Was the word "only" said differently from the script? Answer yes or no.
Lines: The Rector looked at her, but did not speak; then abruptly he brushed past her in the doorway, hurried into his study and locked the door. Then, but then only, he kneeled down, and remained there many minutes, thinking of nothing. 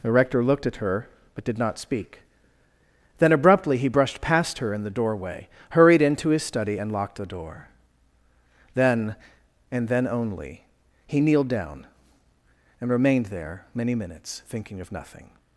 no